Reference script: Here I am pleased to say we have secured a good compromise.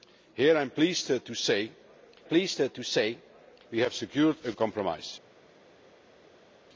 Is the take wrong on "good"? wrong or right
wrong